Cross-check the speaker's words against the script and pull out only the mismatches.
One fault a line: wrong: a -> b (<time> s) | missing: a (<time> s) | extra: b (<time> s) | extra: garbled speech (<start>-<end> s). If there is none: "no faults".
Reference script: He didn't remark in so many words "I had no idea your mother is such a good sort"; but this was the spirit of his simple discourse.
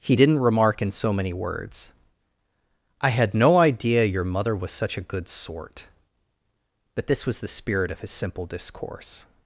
wrong: is -> was (4.5 s)